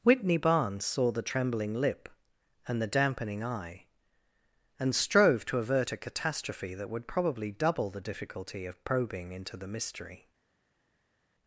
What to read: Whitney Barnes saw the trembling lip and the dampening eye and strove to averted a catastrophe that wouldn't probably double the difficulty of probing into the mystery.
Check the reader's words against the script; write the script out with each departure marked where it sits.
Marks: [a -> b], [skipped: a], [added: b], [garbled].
Whitney Barnes saw the trembling lip and the dampening eye and strove to [averted -> avert] a catastrophe that [wouldn't -> would] probably double the difficulty of probing into the mystery.